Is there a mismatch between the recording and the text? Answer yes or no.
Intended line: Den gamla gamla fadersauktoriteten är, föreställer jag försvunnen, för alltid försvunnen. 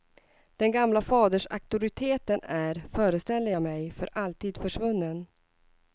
yes